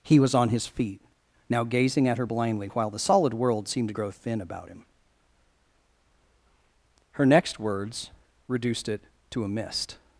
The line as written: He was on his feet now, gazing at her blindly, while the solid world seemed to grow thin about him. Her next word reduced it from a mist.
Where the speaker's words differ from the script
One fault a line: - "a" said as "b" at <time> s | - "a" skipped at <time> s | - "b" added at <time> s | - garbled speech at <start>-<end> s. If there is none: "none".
- "word" said as "words" at 7.6 s
- "from" said as "to" at 9.3 s